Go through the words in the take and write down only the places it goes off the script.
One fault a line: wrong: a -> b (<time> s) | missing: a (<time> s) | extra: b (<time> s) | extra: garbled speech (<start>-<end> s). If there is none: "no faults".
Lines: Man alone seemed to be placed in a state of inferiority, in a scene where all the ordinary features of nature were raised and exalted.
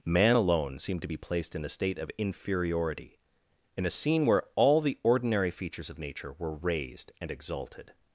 no faults